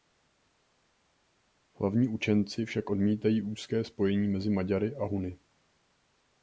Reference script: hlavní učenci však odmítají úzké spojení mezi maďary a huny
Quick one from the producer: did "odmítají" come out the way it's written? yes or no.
yes